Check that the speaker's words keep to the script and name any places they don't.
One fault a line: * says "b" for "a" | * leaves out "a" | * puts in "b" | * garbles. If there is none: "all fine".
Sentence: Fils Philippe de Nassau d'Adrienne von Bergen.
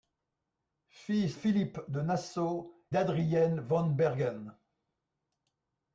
all fine